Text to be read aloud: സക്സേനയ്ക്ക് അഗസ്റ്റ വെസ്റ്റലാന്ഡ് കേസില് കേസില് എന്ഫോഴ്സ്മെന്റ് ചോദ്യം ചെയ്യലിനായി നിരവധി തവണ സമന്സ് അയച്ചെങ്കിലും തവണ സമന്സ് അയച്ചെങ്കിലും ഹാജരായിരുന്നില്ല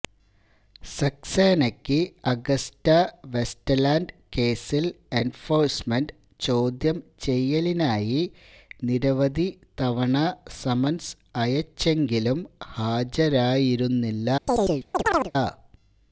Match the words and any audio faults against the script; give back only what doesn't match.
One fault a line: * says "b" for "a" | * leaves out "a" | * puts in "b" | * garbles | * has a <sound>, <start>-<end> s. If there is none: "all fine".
* leaves out "കേസില്"
* leaves out "തവണ സമന്സ് അയച്ചെങ്കിലും"
* has a chirp, 14.5-15.3 s